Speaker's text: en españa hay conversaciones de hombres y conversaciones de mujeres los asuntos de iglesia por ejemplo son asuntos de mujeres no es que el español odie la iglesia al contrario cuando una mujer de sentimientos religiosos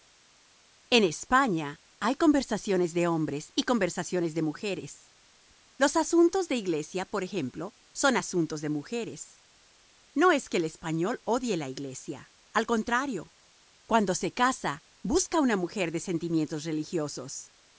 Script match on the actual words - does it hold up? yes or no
no